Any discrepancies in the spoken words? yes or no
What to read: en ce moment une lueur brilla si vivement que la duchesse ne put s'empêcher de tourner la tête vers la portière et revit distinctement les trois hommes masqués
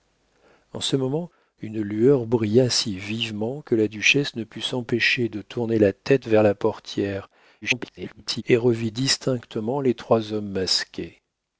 yes